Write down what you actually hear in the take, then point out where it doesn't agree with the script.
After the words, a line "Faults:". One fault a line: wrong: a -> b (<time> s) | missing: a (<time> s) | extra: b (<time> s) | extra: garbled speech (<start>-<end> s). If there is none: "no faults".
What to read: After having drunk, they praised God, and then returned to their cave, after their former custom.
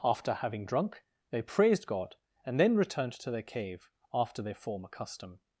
After having drunk, they praised God, and then returned to their cave, after their former custom.
Faults:
no faults